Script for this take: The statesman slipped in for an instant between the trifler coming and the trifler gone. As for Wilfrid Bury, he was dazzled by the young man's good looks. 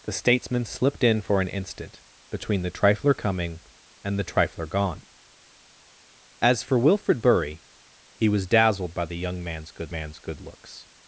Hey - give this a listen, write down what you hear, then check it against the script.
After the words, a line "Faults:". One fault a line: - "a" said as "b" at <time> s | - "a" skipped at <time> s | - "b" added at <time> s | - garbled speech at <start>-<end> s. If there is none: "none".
The statesman slipped in for an instant between the trifler coming and the trifler gone. As for Wilfrid Bury, he was dazzled by the young man's good man's good looks.
Faults:
- "man's good" added at 9.9 s